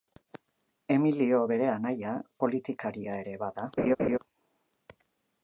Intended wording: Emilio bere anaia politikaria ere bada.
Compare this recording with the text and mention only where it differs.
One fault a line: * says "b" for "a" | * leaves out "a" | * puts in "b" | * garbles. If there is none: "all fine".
all fine